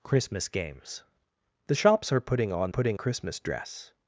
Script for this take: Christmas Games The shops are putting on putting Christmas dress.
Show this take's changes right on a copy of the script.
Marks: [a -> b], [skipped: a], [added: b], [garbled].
Christmas Games The shops are putting on putting Christmas dress.